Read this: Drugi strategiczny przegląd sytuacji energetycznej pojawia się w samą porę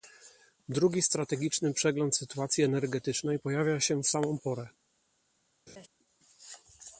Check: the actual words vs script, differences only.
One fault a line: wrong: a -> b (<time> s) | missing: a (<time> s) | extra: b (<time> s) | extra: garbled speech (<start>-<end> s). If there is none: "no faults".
no faults